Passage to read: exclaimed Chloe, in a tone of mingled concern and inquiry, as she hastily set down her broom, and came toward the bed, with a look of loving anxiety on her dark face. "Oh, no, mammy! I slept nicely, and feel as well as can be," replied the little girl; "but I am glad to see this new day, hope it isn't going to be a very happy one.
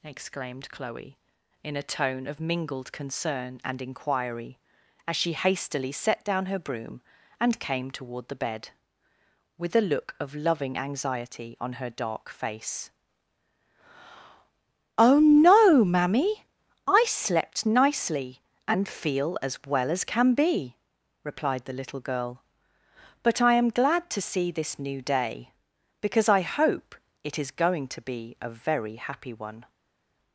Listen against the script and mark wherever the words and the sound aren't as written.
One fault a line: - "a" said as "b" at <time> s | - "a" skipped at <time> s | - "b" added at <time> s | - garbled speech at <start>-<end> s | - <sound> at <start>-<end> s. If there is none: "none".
- "because I" added at 26.0 s
- "isn't" said as "is" at 27.4 s